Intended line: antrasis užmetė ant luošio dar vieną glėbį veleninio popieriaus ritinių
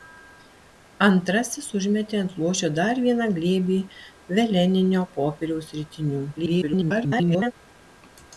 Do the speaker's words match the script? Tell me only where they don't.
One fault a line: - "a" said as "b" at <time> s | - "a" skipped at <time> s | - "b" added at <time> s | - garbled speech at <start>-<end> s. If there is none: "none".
- garbled speech at 6.4-7.5 s